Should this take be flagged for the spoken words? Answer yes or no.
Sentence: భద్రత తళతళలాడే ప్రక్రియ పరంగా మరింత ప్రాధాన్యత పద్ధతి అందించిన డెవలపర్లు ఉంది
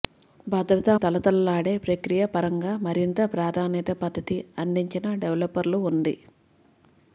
no